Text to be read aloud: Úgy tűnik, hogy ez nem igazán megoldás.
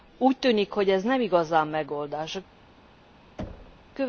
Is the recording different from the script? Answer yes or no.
no